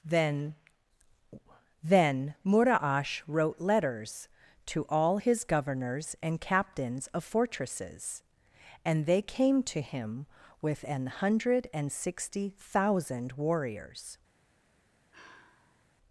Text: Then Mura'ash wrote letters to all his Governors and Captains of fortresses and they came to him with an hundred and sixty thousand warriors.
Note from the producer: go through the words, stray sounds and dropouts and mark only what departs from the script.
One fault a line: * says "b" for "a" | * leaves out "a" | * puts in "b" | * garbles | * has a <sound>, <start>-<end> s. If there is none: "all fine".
* puts in "then"
* has a sigh, 15.1-15.9 s